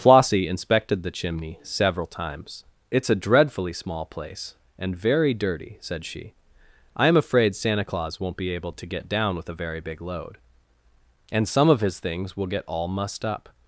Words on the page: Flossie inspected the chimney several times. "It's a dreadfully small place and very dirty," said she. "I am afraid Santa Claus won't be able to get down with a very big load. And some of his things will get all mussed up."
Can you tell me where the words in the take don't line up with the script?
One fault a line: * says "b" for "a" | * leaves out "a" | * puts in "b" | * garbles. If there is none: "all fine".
all fine